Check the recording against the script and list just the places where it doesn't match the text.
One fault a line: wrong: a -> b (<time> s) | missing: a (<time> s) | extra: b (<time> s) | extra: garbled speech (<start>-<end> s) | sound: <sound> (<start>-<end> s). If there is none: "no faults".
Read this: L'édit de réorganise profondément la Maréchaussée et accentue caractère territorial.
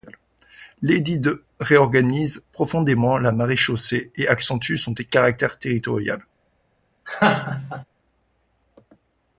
extra: son (4.8 s)
sound: laugh (7.0-7.8 s)